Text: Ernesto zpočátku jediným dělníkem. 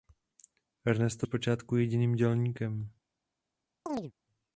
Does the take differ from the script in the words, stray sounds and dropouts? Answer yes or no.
yes